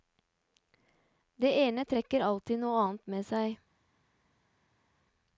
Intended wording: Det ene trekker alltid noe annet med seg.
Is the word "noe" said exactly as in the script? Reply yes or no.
yes